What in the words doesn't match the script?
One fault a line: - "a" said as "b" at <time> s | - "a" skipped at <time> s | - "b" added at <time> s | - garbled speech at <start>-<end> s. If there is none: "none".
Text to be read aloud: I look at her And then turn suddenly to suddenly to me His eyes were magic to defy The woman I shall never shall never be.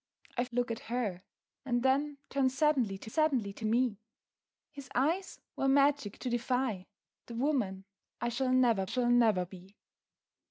none